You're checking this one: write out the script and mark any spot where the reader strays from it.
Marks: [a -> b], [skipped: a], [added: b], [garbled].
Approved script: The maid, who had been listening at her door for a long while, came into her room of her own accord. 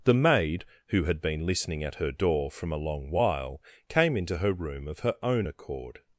The maid, who had been listening at her door [for -> from] a long while, came into her room of her own accord.